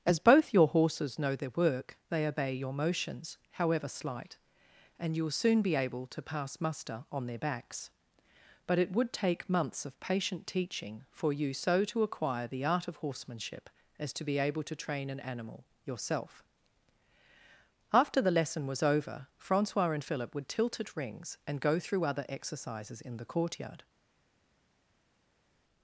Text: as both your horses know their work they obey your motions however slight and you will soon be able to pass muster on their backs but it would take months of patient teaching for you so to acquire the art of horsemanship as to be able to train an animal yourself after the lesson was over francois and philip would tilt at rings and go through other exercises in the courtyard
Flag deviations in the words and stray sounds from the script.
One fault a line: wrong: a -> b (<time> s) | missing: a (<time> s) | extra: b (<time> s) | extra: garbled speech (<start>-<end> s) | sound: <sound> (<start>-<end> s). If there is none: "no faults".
no faults